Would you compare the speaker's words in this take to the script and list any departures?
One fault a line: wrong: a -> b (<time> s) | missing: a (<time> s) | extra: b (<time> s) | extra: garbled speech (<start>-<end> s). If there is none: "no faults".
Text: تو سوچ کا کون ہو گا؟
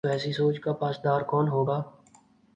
extra: ایسی (0.1 s)
extra: پاسدار (0.7 s)